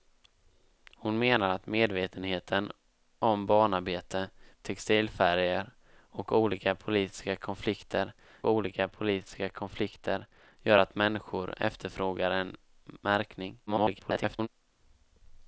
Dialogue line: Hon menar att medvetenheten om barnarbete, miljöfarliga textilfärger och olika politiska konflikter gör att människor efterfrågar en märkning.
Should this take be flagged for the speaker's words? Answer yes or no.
yes